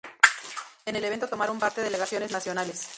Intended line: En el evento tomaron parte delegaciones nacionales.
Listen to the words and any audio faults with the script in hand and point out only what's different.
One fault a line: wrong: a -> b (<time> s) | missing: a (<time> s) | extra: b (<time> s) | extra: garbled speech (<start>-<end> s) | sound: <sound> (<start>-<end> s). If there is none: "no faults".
no faults